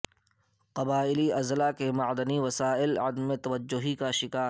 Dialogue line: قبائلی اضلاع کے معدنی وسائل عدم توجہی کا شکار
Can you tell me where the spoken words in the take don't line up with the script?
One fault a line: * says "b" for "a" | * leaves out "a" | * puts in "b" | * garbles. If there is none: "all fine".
all fine